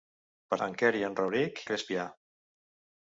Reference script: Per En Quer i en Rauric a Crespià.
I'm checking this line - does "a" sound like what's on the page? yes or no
yes